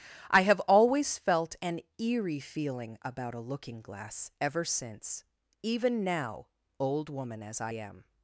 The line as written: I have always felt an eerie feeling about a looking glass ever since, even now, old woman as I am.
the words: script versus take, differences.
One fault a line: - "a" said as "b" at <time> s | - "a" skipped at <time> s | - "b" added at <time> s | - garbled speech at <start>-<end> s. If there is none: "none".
none